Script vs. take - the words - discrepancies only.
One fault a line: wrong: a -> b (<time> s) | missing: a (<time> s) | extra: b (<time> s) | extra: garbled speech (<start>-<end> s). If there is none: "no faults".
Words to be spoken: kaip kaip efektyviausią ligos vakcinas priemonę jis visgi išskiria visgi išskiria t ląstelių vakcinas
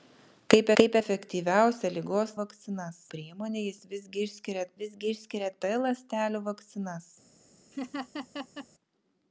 no faults